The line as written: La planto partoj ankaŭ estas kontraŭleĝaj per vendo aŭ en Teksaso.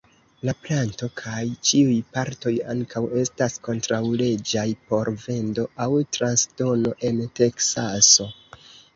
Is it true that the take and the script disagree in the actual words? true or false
true